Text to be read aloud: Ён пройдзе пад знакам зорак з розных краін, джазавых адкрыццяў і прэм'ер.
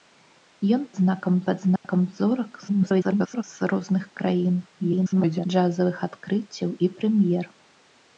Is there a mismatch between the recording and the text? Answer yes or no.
yes